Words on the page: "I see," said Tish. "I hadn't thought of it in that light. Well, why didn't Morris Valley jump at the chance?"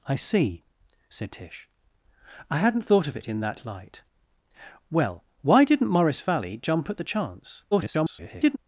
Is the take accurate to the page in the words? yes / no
no